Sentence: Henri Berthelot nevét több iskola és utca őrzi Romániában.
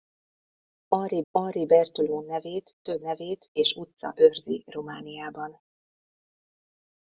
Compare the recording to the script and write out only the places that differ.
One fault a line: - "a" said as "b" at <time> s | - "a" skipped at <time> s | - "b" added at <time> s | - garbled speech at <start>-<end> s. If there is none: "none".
- "henri" added at 1.3 s
- "iskola" said as "nevét" at 3.0 s